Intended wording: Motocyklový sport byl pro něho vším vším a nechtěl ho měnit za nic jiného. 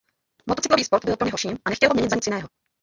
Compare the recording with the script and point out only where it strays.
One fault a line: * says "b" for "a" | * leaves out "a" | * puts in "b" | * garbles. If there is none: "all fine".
* leaves out "vším"